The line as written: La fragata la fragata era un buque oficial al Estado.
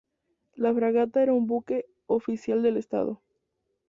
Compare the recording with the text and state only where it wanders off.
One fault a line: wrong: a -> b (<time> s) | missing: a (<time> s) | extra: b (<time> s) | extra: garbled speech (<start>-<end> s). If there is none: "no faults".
missing: la fragata (1.2 s)
wrong: al -> del (2.6 s)